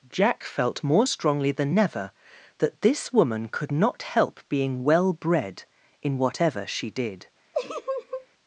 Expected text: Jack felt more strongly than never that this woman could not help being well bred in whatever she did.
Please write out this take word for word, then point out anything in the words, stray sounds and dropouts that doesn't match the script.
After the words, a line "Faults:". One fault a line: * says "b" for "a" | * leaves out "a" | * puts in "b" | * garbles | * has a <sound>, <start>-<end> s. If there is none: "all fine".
Jack felt more strongly than never that this woman could not help being well bred in whatever she did.
Faults:
* has a laugh, 7.5-8.3 s